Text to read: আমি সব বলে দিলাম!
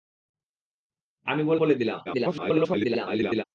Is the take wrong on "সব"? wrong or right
wrong